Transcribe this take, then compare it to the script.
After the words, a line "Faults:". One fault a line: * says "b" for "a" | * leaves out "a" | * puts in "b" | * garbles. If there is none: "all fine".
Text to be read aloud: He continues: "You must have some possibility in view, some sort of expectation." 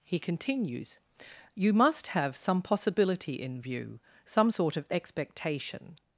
He continues: "You must have some possibility in view, some sort of expectation."
Faults:
all fine